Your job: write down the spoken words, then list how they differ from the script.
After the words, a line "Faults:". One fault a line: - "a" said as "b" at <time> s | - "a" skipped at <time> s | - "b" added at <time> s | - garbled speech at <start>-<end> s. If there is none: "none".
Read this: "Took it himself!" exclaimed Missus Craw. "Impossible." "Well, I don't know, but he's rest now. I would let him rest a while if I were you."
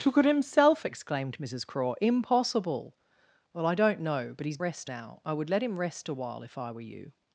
"Took it himself!" exclaimed Missus Craw. "Impossible." "Well, I don't know, but he's rest now. I would let him rest a while if I were you."
Faults:
none